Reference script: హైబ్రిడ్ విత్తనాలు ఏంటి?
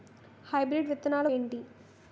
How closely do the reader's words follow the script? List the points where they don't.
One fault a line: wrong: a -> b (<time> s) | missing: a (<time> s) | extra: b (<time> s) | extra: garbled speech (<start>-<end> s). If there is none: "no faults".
no faults